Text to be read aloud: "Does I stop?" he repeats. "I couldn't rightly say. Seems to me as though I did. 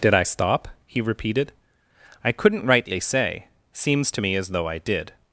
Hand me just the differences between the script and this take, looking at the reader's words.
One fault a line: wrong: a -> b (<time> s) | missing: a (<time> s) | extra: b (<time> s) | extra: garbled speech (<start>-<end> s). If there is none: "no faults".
wrong: Does -> Did (0.0 s)
wrong: repeats -> repeated (1.0 s)